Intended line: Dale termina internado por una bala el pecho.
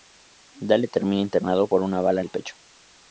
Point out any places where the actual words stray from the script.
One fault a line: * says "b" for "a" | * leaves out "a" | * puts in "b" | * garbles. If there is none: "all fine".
all fine